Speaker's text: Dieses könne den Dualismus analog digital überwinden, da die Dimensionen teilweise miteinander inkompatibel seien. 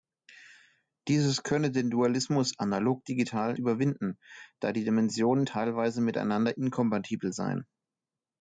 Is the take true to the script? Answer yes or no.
yes